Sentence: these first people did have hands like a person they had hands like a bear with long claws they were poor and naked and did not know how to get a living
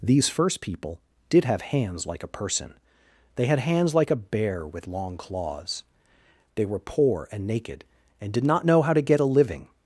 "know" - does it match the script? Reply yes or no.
yes